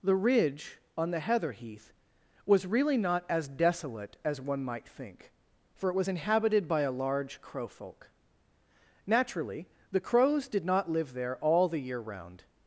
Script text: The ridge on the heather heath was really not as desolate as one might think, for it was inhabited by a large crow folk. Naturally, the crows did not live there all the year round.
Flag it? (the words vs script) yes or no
no